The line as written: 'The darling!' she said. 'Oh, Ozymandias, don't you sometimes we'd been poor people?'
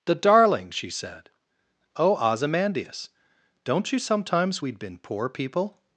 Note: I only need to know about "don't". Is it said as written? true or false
true